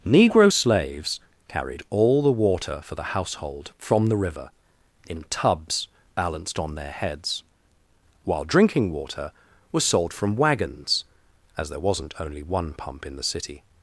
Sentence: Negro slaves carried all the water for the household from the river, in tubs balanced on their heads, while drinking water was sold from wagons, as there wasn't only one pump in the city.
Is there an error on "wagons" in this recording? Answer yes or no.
no